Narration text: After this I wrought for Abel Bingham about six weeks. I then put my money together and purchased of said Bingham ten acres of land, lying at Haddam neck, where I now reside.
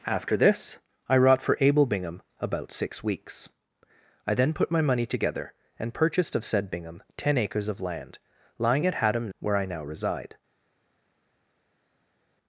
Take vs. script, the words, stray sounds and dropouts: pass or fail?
fail